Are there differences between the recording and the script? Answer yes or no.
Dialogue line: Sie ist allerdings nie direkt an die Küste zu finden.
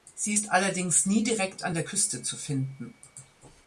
yes